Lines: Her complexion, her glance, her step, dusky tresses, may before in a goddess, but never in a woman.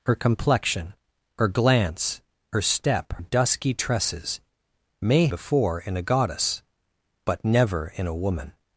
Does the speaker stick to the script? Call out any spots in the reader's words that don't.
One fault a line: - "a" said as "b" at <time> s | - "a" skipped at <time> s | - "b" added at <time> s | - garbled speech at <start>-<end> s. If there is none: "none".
none